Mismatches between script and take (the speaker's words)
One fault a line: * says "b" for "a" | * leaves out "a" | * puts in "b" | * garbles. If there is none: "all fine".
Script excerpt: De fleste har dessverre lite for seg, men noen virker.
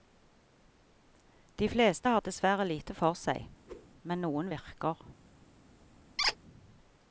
all fine